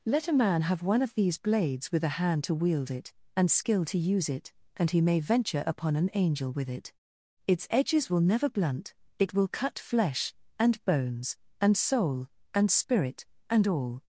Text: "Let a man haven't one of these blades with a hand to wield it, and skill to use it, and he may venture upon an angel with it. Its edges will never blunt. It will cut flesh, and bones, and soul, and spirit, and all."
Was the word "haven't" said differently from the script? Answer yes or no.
yes